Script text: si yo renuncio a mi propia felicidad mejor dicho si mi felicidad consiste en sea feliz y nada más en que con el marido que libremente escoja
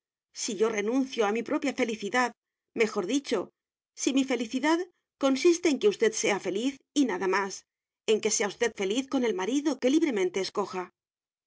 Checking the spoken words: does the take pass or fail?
fail